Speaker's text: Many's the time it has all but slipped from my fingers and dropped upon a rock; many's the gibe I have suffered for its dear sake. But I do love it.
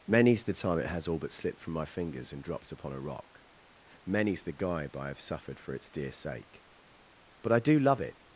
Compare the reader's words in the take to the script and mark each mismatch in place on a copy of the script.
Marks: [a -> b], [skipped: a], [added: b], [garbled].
Many's the time it has all but slipped from my fingers and dropped upon a rock; many's the gibe I have suffered for its dear sake. But I do love it.